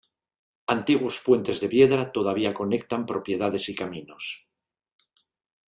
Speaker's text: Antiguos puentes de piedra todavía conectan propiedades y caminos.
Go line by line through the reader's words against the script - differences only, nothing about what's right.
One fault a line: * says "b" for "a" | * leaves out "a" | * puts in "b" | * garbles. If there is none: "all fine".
all fine